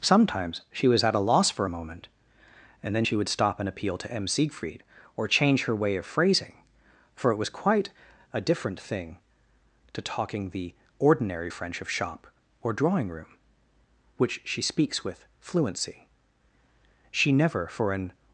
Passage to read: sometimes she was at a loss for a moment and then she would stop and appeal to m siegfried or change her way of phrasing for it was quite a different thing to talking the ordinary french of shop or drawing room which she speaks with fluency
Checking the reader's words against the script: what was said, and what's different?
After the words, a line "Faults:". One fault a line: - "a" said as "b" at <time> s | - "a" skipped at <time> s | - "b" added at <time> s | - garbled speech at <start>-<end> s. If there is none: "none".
sometimes she was at a loss for a moment and then she would stop and appeal to m siegfried or change her way of phrasing for it was quite a different thing to talking the ordinary french of shop or drawing room which she speaks with fluency she never for an
Faults:
- "she never for an" added at 17.1 s